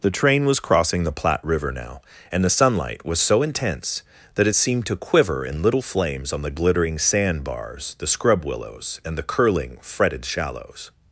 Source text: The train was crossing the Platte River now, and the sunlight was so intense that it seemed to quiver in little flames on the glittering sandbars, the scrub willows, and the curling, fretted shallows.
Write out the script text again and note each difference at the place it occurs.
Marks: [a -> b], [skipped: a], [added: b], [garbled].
The train was crossing the Platte River now, and the sunlight was so intense that it seemed to quiver in little flames on the glittering sandbars, the scrub willows, and the curling, fretted shallows.